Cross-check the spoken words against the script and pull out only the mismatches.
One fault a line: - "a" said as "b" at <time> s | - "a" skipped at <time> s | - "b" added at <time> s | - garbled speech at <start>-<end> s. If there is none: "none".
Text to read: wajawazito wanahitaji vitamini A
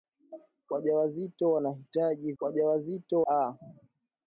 - "vitamini" said as "wajawazito" at 2.4 s